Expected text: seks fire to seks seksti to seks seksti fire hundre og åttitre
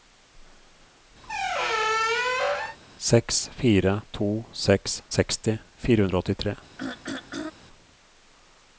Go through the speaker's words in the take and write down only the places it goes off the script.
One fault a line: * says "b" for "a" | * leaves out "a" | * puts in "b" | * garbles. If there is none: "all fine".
* leaves out "to seks seksti"